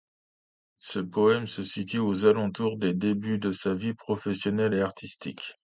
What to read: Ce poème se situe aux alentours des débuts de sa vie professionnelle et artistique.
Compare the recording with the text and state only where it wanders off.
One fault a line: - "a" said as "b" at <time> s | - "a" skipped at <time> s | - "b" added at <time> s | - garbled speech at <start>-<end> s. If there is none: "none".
none